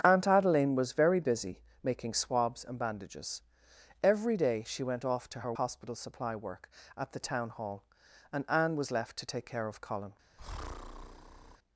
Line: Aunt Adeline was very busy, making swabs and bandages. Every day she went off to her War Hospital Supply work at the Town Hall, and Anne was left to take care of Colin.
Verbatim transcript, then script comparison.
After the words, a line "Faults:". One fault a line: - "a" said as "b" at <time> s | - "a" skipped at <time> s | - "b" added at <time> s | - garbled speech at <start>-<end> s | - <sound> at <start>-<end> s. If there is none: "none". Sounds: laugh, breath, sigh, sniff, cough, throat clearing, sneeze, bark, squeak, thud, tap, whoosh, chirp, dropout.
Aunt Adeline was very busy, making swabs and bandages. Every day she went off to her Hospital Supply work at the Town Hall, and Anne was left to take care of Colin.
Faults:
- "War" skipped at 5.5 s
- breath at 10.4-11.6 s